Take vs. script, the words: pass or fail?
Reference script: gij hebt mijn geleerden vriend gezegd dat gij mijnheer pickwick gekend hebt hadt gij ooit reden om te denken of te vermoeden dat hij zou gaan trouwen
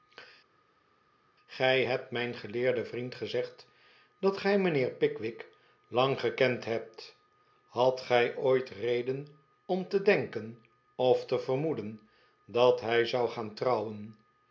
fail